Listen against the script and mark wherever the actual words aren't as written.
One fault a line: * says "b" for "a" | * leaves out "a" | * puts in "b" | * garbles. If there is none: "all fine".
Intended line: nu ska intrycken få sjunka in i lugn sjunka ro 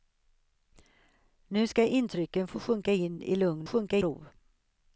all fine